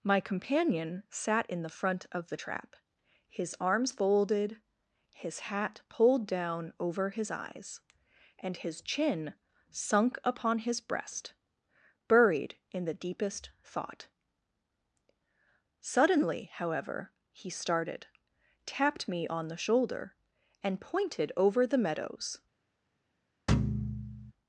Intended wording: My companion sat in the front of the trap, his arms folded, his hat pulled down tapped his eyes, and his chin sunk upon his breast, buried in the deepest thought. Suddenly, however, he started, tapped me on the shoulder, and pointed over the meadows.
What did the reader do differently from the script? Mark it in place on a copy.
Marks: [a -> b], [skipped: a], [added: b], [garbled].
My companion sat in the front of the trap, his arms folded, his hat pulled down [tapped -> over] his eyes, and his chin sunk upon his breast, buried in the deepest thought. Suddenly, however, he started, tapped me on the shoulder, and pointed over the meadows.